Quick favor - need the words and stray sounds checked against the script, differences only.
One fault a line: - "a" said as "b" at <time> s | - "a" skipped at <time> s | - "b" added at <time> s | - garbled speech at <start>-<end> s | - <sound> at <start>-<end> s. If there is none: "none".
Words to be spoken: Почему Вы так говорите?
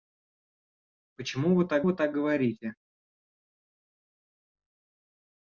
- "Вы так" added at 1.8 s